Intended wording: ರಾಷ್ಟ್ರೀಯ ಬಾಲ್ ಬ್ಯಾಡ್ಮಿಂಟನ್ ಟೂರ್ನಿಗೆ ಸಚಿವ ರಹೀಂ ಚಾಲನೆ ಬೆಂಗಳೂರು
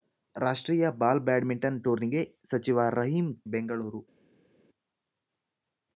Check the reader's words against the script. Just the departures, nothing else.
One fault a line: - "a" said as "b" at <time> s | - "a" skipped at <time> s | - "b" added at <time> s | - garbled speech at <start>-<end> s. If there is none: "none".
- "ಚಾಲನೆ" skipped at 3.3 s